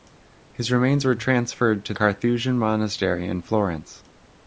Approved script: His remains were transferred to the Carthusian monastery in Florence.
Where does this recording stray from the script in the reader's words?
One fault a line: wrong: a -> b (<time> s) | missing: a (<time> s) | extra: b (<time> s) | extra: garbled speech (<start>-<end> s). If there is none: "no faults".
missing: the (1.9 s)